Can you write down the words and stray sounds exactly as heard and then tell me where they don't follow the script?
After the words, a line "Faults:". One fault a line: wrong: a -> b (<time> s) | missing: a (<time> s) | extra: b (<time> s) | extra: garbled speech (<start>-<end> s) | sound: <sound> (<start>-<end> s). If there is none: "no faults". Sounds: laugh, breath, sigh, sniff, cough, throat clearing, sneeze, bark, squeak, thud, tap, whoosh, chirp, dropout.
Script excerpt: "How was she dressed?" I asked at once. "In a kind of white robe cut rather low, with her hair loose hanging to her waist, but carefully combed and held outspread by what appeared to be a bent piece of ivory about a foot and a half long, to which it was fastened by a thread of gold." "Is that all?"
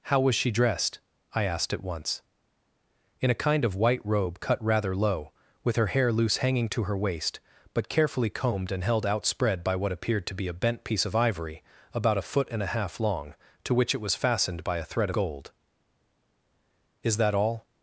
"How was she dressed?" I asked at once. "In a kind of white robe cut rather low, with her hair loose hanging to her waist, but carefully combed and held outspread by what appeared to be a bent piece of ivory about a foot and a half long, to which it was fastened by a thread gold." "Is that all?"
Faults:
missing: of (15.1 s)